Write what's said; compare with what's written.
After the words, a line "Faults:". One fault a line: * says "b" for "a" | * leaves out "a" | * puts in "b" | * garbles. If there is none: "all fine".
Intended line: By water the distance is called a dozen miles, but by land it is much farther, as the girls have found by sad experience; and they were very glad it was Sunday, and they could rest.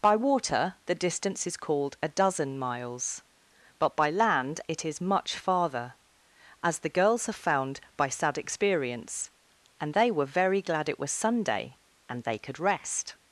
By water the distance is called a dozen miles, but by land it is much farther, as the girls have found by sad experience; and they were very glad it was Sunday, and they could rest.
Faults:
all fine